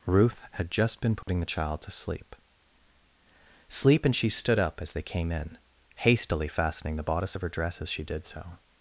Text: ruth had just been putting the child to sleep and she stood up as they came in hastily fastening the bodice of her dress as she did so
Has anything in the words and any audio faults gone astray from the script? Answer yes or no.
yes